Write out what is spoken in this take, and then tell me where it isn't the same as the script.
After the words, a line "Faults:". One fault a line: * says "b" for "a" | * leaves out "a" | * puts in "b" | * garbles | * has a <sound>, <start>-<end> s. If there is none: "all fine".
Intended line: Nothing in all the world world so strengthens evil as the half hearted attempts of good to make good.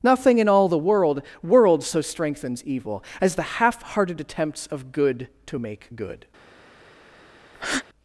Nothing in all the world world so strengthens evil as the half hearted attempts of good to make good.
Faults:
* has a breath, 7.5-7.8 s